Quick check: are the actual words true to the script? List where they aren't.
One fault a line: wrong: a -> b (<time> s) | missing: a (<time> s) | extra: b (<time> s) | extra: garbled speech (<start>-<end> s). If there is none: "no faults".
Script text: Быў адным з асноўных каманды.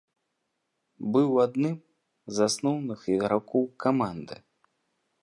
extra: ігракоў (3.2 s)